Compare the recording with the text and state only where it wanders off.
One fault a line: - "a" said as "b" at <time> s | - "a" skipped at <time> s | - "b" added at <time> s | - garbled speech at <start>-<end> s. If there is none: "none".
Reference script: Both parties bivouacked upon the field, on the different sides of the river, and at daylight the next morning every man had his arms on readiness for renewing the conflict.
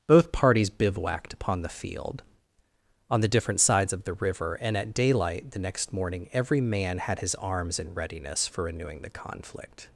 - "on" said as "in" at 7.8 s